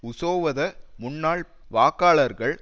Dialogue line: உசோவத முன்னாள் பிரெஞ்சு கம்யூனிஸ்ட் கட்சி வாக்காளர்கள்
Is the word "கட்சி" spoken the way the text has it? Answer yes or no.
no